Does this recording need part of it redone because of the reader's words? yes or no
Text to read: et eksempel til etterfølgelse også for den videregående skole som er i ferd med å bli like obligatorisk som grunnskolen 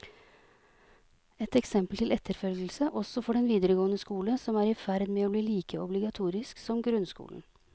no